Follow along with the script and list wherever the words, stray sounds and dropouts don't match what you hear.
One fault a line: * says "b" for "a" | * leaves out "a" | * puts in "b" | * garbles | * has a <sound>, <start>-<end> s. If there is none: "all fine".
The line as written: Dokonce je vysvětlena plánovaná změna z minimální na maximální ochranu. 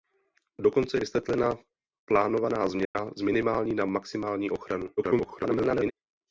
* leaves out "je"
* has a dropout, 2.8-3.0 s
* garbles